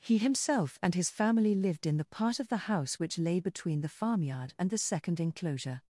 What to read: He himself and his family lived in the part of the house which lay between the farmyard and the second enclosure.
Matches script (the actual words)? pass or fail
pass